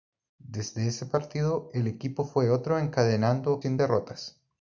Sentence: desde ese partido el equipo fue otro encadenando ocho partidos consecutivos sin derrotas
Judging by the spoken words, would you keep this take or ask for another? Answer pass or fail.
fail